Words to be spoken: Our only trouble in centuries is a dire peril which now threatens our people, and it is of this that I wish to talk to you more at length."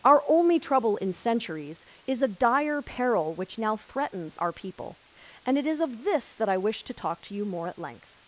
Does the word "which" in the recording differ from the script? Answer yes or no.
no